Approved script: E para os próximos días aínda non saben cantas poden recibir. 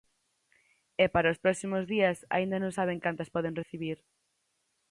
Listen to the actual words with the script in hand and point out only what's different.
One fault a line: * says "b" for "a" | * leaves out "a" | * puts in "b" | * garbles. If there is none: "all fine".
all fine